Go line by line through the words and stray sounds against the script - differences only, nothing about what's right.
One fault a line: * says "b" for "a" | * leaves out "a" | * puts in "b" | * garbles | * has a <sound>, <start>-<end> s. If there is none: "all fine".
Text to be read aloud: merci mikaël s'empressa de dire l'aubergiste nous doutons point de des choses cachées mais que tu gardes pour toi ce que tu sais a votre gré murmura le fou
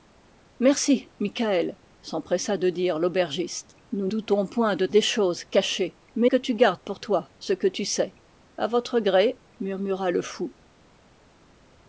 all fine